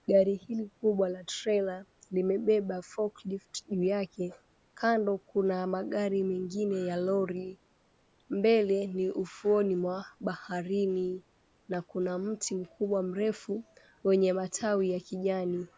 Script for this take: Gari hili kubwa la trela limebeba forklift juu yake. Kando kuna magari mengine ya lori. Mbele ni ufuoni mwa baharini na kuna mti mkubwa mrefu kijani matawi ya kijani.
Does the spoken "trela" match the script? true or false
true